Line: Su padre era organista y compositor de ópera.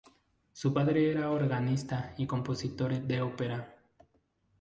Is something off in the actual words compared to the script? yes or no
no